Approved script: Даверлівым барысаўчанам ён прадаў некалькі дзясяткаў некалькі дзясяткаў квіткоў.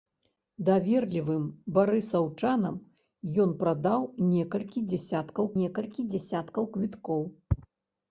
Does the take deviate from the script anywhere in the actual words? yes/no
no